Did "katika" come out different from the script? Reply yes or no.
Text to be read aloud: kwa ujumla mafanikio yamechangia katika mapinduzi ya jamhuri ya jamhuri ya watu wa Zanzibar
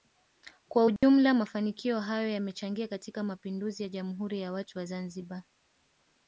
no